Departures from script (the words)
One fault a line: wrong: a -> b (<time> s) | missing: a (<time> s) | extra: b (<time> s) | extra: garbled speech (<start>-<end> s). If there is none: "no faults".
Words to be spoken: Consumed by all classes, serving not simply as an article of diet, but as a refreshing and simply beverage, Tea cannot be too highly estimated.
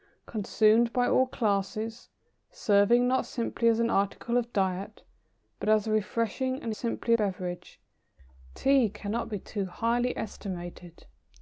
no faults